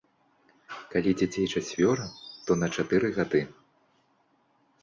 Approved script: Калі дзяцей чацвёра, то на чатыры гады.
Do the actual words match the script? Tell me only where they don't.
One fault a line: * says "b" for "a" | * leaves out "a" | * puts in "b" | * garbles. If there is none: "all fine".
all fine